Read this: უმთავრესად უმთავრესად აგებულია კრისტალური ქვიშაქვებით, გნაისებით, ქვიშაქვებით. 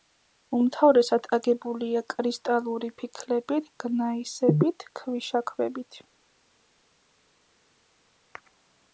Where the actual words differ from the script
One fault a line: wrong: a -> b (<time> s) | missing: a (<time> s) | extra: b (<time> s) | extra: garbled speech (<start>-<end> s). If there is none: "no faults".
missing: უმთავრესად (1.3 s)
wrong: ქვიშაქვებით -> ფიქლებით (3.0 s)